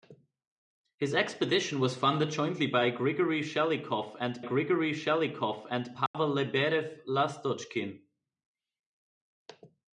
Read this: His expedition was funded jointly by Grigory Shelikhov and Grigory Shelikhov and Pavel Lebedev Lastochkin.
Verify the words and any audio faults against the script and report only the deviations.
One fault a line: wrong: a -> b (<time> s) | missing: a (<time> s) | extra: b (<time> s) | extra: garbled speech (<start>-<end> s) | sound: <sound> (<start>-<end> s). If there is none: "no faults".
sound: dropout (6.1-6.1 s)